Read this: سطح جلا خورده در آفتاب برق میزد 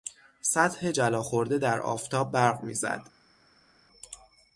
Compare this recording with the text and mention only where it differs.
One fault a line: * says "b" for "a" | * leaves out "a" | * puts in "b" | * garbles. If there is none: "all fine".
all fine